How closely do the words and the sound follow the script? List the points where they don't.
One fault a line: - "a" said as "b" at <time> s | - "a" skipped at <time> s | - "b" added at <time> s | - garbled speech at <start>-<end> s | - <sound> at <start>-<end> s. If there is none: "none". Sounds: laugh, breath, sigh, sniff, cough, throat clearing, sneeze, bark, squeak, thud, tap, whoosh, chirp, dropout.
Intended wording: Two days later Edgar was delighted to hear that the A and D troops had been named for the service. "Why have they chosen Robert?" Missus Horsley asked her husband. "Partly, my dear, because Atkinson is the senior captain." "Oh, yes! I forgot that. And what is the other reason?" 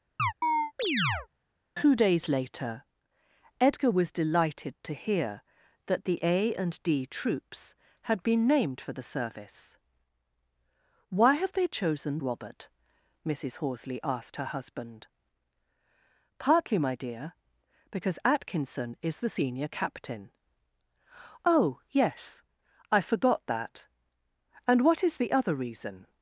- chirp at 0.2-1.3 s